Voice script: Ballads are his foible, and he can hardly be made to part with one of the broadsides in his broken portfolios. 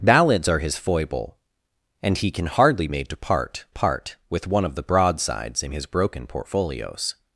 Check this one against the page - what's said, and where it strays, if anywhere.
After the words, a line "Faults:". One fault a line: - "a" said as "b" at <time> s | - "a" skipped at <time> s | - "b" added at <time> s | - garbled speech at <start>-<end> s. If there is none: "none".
Ballads are his foible, and he can hardly made to part part with one of the broadsides in his broken portfolios.
Faults:
- "be" skipped at 2.9 s
- "part" added at 3.7 s